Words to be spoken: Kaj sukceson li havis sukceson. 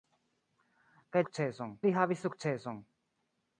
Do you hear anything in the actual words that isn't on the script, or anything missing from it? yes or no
no